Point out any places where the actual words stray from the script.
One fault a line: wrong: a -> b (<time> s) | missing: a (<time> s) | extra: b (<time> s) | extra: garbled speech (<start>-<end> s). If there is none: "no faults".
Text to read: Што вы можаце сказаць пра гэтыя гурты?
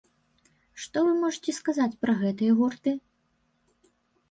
no faults